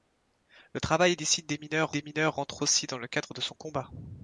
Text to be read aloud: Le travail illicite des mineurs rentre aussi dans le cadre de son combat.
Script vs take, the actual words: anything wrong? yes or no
yes